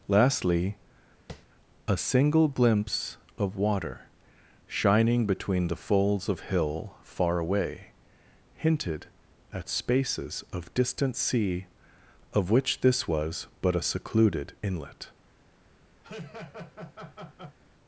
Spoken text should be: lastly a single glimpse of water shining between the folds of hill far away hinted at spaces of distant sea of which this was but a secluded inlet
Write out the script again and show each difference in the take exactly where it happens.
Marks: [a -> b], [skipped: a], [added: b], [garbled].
lastly a single glimpse of water shining between the folds of hill far away hinted at spaces of distant sea of which this was but a secluded inlet